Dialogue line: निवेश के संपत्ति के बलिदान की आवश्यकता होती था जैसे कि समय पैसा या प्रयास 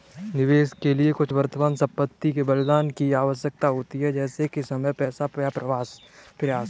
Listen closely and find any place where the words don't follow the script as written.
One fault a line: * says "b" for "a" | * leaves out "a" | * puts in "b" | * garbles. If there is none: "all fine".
* puts in "लिए कुछ वर्तमान"
* says "है" for "था"